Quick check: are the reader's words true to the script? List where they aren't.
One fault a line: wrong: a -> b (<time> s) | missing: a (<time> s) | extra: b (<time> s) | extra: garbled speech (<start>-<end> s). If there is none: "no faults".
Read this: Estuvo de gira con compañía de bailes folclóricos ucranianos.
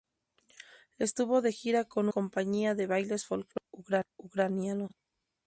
no faults